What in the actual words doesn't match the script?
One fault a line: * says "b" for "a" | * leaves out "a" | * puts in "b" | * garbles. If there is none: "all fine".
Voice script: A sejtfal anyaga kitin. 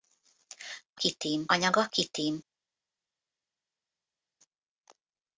* says "kitin" for "sejtfal"